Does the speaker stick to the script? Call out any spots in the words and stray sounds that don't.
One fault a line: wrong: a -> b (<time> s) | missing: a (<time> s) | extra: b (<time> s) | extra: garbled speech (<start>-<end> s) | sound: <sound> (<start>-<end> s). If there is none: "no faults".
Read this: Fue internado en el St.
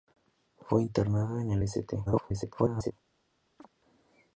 extra: garbled speech (2.1-2.9 s)
sound: chirp (3.6-3.7 s)